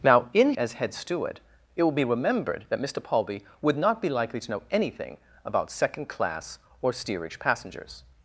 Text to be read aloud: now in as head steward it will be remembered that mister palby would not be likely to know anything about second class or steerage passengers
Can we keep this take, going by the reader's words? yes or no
yes